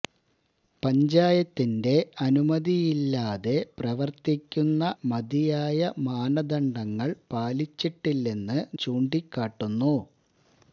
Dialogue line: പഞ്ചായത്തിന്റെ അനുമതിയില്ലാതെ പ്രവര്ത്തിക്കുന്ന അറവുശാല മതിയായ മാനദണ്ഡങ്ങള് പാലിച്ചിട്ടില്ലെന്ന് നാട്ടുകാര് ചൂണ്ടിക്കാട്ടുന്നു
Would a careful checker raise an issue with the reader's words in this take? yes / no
yes